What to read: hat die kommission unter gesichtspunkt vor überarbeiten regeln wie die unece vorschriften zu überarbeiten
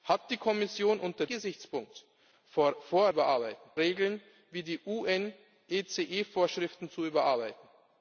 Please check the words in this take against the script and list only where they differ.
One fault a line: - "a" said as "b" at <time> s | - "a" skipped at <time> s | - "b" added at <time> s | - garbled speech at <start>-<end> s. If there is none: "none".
none